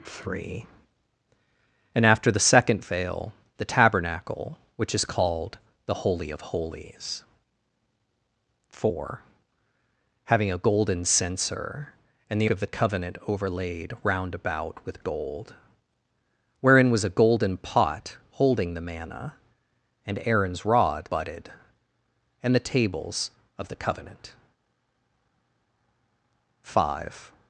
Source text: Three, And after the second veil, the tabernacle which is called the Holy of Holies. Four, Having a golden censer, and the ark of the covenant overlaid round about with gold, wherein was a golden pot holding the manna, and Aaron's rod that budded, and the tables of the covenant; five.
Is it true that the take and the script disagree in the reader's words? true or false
true